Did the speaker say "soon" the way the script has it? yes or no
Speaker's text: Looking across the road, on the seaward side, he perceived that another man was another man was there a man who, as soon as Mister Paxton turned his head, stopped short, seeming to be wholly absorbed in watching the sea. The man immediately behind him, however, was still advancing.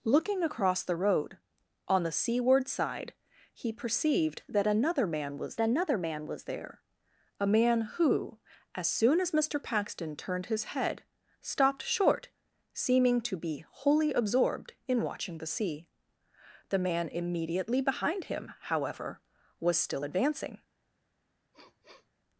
yes